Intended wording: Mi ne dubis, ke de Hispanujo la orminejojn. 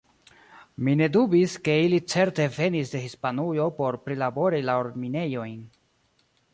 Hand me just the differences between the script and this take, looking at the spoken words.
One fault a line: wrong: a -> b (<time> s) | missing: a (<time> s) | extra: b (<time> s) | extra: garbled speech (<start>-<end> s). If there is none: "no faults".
extra: ili certe venis (1.8 s)
extra: por prilabori (3.8 s)